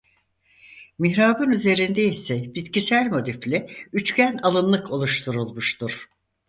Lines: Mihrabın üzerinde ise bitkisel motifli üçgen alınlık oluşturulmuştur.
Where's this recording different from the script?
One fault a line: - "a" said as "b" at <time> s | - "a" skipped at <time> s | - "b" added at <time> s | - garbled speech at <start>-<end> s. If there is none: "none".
none